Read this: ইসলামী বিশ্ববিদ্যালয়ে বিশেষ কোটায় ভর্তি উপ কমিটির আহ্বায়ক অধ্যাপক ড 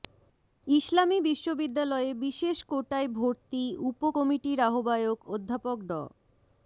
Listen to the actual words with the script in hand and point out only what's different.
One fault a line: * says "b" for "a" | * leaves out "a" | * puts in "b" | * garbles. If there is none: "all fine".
all fine